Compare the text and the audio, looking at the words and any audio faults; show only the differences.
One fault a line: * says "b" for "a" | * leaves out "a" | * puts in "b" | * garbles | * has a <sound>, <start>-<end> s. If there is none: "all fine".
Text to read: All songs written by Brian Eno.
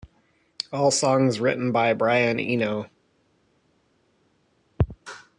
all fine